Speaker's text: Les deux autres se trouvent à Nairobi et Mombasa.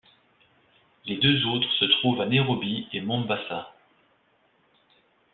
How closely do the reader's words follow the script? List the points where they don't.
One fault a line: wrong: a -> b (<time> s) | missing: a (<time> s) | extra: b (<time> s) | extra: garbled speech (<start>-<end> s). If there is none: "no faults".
no faults